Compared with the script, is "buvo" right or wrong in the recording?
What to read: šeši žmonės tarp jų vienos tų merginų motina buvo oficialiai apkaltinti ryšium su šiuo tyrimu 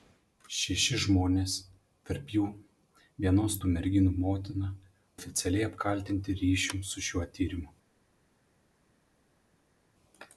wrong